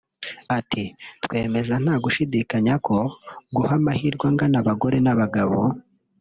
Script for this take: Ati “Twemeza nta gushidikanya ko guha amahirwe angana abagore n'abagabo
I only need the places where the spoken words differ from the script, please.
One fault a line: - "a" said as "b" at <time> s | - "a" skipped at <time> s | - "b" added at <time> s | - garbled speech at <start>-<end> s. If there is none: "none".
none